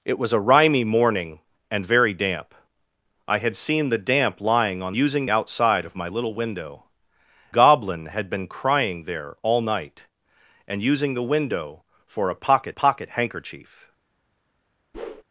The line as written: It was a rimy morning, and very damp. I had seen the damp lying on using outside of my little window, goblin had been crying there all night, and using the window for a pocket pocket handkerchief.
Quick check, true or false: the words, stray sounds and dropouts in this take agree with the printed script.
false